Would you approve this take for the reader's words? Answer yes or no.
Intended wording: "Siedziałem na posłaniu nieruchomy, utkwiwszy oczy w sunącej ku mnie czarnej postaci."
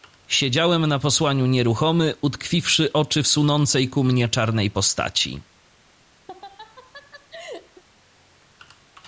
yes